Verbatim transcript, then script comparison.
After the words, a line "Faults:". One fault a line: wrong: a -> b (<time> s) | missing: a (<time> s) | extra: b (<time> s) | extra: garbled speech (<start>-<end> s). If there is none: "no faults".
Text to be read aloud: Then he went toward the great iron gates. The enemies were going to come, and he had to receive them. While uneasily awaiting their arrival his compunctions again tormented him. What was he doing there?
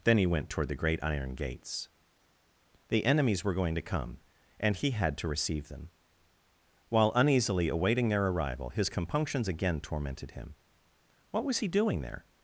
Then he went toward the great iron gates. The enemies were going to come, and he had to receive them. While uneasily awaiting their arrival his compunctions again tormented him. What was he doing there?
Faults:
no faults